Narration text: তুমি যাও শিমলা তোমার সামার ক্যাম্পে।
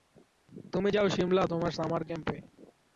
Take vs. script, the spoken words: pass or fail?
pass